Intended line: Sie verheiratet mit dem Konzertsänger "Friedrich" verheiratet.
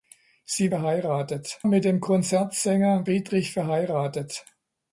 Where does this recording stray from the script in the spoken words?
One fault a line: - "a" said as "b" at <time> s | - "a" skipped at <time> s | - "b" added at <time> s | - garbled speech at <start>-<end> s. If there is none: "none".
none